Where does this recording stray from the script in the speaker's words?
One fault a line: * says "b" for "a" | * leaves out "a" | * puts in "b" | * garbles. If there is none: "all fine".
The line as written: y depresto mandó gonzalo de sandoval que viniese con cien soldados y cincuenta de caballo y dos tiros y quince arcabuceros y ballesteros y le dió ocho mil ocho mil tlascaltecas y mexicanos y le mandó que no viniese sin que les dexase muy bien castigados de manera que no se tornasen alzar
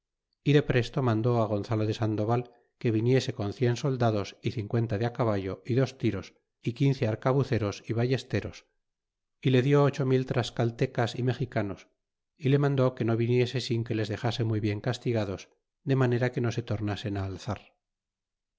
* leaves out "ocho mil"